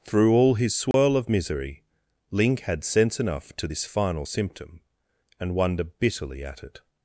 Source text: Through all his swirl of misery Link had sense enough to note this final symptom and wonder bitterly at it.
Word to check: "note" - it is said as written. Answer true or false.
false